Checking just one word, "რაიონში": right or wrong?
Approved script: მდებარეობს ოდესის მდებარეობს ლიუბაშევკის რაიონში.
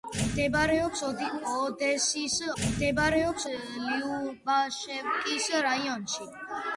right